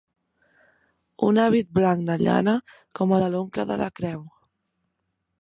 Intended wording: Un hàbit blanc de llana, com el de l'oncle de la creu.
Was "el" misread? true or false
true